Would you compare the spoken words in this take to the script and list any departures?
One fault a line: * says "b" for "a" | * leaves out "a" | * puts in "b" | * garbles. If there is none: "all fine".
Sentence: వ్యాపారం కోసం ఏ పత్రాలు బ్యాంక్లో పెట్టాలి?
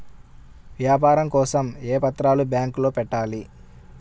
all fine